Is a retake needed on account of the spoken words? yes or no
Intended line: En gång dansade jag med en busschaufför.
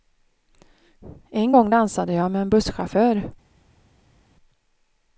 no